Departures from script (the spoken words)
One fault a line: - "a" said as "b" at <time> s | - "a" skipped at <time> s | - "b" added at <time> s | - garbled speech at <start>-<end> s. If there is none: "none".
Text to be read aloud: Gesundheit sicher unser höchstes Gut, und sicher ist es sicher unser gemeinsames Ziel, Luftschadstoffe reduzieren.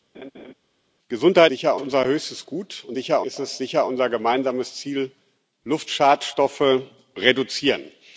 none